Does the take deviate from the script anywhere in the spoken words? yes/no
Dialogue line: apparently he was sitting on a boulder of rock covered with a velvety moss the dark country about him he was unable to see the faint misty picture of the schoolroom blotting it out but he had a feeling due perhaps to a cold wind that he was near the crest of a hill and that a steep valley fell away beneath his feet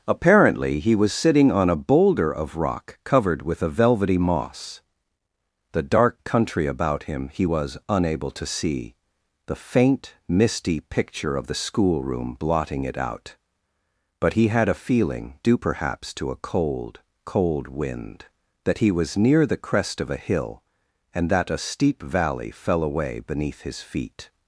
yes